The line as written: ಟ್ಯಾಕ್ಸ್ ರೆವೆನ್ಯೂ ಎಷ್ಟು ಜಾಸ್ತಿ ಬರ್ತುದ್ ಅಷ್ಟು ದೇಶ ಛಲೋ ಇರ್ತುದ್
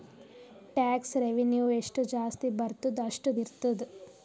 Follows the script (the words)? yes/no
no